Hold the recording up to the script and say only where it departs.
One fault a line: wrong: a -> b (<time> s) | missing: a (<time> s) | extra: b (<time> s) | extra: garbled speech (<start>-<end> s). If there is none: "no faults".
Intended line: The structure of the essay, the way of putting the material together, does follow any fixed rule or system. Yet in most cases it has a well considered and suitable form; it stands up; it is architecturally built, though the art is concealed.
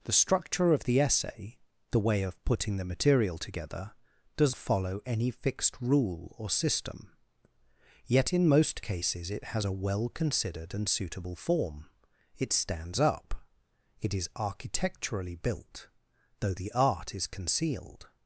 no faults